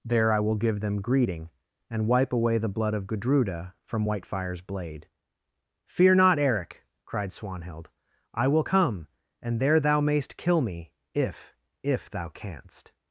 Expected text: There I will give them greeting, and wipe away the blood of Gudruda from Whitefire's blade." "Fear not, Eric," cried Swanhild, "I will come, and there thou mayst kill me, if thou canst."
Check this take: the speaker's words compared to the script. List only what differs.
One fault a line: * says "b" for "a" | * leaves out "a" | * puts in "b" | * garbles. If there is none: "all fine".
* puts in "if"